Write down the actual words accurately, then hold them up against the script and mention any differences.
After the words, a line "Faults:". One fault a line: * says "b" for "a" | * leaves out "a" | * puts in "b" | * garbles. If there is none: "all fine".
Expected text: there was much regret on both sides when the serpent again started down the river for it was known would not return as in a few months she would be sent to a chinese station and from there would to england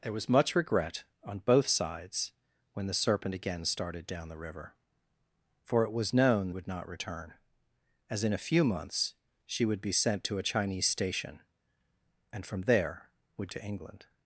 there was much regret on both sides when the serpent again started down the river for it was known would not return as in a few months she would be sent to a chinese station and from there would to england
Faults:
all fine